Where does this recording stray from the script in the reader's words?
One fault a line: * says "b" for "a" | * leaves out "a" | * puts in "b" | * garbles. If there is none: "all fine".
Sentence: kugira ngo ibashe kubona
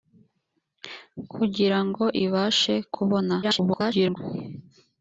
* garbles